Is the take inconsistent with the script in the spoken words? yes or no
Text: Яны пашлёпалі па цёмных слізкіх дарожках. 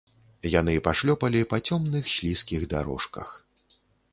no